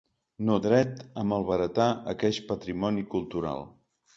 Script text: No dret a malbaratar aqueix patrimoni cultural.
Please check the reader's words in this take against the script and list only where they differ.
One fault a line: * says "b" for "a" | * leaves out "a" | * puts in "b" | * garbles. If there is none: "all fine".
all fine